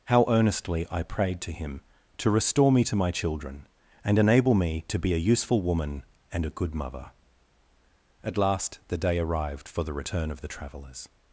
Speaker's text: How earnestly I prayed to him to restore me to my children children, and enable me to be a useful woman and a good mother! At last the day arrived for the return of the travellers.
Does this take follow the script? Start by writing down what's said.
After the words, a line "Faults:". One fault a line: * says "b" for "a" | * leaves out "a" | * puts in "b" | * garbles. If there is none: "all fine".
How earnestly I prayed to him to restore me to my children, and enable me to be a useful woman and a good mother! At last the day arrived for the return of the travellers.
Faults:
* leaves out "children"